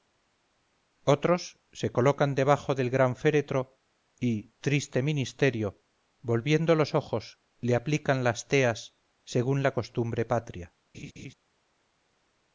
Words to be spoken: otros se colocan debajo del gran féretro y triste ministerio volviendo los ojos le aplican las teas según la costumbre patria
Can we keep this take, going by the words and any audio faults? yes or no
no